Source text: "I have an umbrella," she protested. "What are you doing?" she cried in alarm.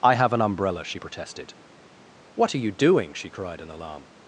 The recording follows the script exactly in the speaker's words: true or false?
true